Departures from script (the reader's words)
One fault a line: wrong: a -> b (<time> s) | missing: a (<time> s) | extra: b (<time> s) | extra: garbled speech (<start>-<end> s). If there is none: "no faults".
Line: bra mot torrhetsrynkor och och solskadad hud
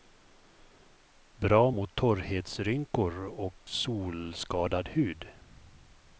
missing: och (3.6 s)